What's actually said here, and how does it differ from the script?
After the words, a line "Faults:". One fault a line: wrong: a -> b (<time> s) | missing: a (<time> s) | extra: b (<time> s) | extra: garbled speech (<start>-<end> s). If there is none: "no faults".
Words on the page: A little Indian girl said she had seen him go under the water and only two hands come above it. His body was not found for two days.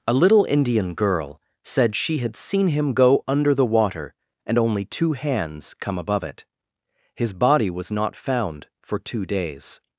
A little Indian girl said she had seen him go under the water and only two hands come above it. His body was not found for two days.
Faults:
no faults